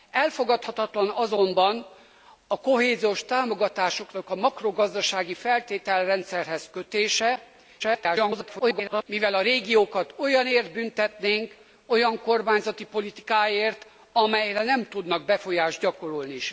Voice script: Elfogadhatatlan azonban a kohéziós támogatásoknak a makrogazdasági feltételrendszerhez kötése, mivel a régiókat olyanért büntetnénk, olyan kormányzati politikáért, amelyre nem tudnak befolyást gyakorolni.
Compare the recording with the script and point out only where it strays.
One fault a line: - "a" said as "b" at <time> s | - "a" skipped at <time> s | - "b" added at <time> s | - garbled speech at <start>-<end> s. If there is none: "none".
- garbled speech at 7.8-9.0 s